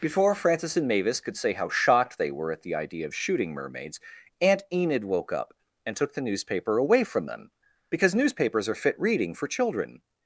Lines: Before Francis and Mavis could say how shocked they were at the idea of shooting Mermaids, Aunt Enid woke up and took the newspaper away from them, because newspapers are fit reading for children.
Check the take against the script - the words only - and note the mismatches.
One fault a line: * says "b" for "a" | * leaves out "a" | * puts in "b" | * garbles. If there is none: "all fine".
all fine